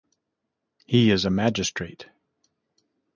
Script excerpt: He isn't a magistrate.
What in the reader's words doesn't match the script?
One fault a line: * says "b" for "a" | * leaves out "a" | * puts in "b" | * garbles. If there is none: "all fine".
* says "is" for "isn't"